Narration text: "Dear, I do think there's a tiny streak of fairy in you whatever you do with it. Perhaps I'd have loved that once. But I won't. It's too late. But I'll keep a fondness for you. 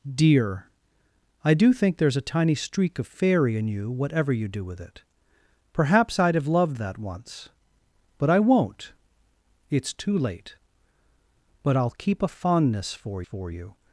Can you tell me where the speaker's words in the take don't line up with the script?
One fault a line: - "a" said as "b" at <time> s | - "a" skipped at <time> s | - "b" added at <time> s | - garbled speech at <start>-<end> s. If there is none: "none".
- "for" added at 13.2 s